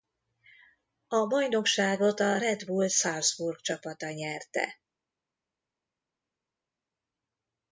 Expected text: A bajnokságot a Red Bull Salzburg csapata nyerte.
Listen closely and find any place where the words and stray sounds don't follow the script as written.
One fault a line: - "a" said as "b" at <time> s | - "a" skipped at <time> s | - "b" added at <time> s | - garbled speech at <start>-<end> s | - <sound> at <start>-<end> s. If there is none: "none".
none